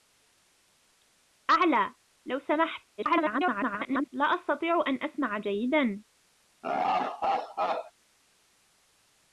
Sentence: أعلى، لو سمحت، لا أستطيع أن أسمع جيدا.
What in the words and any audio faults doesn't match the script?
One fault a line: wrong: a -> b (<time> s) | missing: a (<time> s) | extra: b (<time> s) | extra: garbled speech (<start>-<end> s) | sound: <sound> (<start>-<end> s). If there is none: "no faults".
extra: garbled speech (3.0-4.1 s)
sound: laugh (6.6-7.9 s)